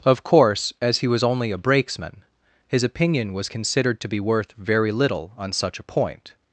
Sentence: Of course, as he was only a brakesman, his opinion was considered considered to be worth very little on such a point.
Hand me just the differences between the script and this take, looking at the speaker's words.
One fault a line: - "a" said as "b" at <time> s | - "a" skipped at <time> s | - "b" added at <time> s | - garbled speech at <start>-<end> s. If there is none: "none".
- "considered" skipped at 4.0 s